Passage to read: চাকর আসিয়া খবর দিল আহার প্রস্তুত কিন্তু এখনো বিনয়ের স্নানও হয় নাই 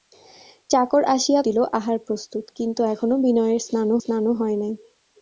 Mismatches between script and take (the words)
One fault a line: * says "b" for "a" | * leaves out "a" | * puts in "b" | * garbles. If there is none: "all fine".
* leaves out "খবর"
* puts in "স্নানও"